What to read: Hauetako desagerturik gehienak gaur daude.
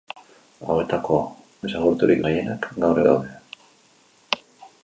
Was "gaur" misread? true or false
false